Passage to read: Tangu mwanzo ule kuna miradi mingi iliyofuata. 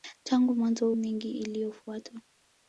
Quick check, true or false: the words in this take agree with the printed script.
false